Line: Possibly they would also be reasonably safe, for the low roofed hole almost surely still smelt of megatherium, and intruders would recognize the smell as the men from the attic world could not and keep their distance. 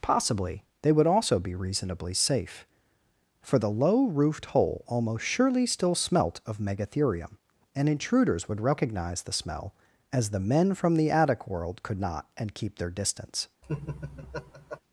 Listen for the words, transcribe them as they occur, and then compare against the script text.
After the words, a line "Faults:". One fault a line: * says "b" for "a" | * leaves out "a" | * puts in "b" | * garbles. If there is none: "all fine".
Possibly they would also be reasonably safe, for the low roofed hole almost surely still smelt of megatherium, and intruders would recognize the smell as the men from the attic world could not and keep their distance.
Faults:
all fine